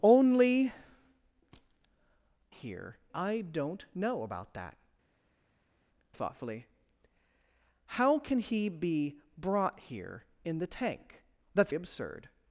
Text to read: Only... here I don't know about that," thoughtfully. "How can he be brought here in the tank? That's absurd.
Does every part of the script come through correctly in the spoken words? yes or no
yes